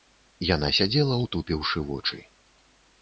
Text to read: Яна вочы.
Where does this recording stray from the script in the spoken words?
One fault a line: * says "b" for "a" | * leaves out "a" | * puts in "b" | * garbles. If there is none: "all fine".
* puts in "сядзела утупіўшы"